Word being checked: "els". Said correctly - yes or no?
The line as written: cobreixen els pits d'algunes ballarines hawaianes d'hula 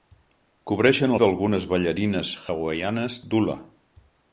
no